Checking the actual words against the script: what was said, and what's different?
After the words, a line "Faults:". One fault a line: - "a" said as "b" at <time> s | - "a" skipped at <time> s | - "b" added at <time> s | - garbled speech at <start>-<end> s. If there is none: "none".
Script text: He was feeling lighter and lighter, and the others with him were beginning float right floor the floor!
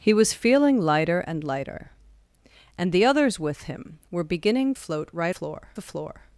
He was feeling lighter and lighter, and the others with him were beginning float right floor the floor!
Faults:
none